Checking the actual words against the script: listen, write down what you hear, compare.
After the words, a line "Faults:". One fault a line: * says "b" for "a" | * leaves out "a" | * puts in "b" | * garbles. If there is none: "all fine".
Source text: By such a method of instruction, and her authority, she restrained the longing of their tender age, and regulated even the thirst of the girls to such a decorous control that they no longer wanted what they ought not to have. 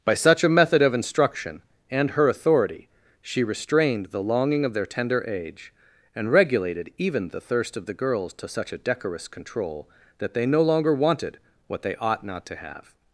By such a method of instruction, and her authority, she restrained the longing of their tender age, and regulated even the thirst of the girls to such a decorous control that they no longer wanted what they ought not to have.
Faults:
all fine